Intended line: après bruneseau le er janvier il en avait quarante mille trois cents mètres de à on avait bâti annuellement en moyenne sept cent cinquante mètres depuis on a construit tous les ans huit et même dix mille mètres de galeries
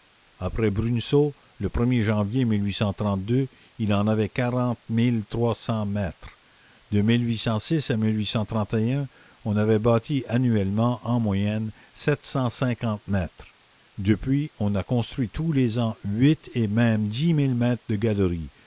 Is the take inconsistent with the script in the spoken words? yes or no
no